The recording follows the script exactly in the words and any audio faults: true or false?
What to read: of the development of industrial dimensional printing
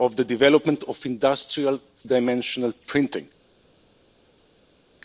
true